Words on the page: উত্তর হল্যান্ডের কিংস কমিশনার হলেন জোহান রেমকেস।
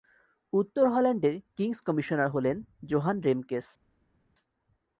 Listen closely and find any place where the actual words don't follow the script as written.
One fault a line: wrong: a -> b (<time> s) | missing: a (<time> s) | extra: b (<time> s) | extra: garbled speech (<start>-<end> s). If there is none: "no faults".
no faults